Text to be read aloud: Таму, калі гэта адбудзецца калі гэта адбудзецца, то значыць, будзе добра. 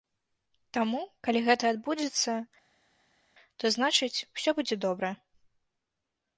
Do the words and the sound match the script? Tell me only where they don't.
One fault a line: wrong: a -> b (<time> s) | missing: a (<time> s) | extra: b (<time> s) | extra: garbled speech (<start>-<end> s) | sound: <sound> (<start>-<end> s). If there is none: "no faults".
missing: калі гэта адбудзецца (2.3 s)
extra: усё (4.4 s)